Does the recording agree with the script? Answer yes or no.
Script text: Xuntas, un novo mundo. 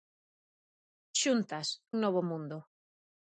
yes